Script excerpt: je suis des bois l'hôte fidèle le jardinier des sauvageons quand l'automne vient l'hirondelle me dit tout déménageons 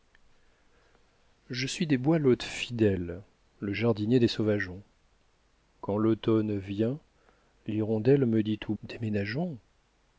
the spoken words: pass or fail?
pass